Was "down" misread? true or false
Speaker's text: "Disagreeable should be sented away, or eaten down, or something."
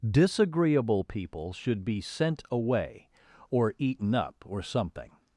true